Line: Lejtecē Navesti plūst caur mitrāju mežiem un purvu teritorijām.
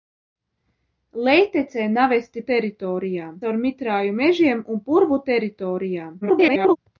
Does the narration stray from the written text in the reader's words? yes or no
yes